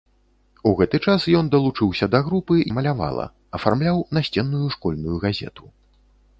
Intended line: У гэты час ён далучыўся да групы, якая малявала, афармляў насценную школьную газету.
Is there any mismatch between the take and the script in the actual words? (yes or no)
yes